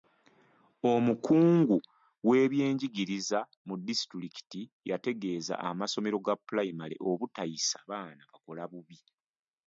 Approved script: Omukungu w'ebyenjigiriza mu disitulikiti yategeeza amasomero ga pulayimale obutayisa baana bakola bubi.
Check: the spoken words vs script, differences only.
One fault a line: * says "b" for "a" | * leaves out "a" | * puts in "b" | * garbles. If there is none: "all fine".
all fine